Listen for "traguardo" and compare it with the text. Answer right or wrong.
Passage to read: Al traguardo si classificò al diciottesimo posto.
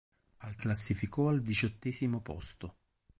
wrong